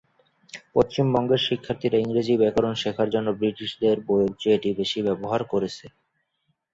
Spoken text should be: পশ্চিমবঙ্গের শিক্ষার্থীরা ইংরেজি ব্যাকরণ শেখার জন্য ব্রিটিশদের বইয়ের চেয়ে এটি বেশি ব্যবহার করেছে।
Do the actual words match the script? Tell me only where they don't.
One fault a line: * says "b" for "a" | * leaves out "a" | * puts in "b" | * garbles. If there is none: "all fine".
all fine